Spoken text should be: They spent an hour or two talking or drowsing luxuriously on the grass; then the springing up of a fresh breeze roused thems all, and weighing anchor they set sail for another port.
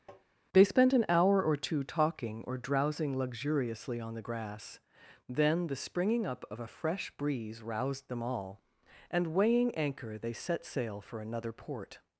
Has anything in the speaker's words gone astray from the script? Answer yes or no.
yes